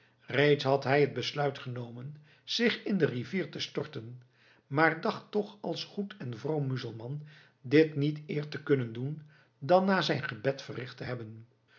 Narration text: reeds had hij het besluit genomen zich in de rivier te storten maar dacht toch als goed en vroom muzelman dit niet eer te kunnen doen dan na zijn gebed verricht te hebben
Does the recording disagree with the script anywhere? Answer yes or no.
no